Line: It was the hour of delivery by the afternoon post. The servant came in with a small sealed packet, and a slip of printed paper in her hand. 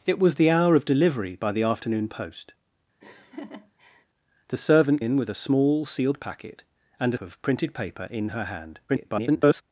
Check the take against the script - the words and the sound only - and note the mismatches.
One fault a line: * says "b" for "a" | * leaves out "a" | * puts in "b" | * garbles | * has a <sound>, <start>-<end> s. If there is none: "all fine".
* has a laugh, 3.0-4.1 s
* leaves out "came"
* leaves out "slip"
* garbles